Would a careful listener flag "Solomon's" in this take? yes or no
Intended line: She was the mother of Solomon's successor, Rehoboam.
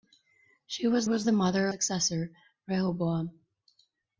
yes